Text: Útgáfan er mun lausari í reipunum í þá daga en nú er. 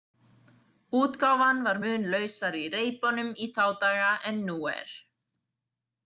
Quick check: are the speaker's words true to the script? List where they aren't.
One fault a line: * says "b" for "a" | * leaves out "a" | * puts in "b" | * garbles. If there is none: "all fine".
* says "var" for "er"